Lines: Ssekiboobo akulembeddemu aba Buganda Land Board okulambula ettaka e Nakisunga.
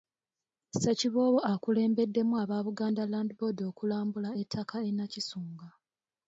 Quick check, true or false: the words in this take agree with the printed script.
true